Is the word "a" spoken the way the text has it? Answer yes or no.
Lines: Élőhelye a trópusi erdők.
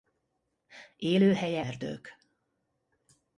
no